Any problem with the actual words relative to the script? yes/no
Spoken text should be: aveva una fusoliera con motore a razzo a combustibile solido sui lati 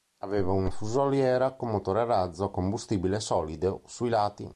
no